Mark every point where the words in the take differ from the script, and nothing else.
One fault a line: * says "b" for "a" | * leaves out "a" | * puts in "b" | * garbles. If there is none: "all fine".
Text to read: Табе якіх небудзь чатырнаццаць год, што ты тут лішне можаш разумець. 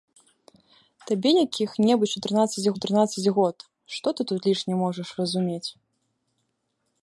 * puts in "чатырнаццаць"